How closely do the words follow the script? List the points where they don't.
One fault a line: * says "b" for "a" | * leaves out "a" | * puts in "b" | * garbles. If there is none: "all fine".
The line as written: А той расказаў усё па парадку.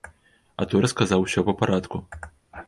all fine